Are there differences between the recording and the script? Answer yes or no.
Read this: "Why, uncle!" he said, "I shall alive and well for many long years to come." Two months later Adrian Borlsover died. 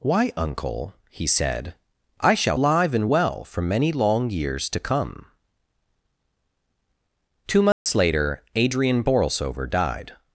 no